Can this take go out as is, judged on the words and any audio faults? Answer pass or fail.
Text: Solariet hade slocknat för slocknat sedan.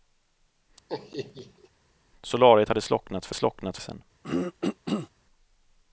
fail